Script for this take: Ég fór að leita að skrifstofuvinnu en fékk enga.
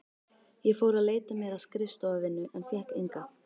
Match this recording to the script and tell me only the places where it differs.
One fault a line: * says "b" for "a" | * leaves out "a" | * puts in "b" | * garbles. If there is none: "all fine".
* puts in "mér"